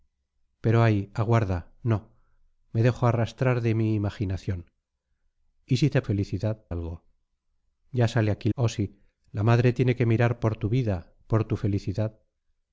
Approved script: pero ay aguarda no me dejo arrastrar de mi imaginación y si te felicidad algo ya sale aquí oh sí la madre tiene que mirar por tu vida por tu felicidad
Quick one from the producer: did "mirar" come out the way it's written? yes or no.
yes